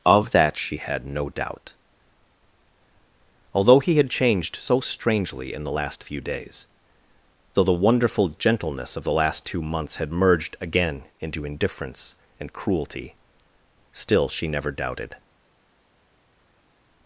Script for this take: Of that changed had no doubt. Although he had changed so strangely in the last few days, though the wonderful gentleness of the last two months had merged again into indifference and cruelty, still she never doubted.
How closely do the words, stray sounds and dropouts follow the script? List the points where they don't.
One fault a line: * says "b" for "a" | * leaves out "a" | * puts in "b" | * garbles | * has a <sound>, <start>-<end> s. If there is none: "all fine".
* says "she" for "changed"